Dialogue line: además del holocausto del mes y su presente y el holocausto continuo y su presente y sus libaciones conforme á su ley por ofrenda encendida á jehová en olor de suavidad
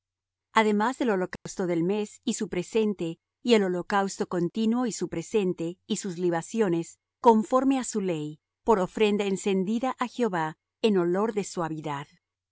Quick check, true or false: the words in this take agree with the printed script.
true